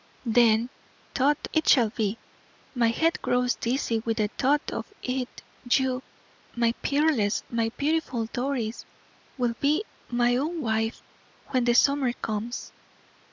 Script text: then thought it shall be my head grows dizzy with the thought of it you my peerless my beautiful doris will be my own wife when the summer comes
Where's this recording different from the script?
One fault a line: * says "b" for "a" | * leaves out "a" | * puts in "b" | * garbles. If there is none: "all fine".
all fine